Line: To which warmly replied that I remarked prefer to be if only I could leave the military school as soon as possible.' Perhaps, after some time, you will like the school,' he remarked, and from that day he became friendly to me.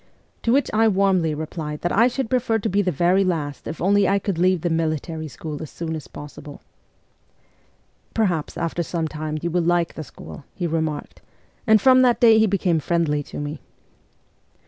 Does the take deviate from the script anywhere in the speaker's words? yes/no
yes